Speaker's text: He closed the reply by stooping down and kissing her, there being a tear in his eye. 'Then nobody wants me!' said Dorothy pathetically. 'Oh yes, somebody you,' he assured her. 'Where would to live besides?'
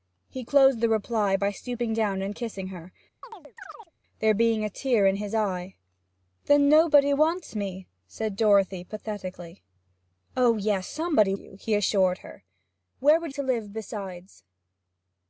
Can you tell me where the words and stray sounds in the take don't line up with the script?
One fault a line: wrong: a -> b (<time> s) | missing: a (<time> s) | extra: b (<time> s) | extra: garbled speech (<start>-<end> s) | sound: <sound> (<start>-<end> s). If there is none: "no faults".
sound: chirp (3.2-3.9 s)